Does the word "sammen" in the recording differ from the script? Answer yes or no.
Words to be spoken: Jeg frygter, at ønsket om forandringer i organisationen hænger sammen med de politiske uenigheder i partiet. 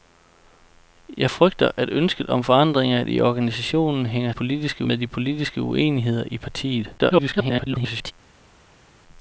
yes